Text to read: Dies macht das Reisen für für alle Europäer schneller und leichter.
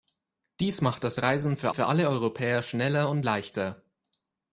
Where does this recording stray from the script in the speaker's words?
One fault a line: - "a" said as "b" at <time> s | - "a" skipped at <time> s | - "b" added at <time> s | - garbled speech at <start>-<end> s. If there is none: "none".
none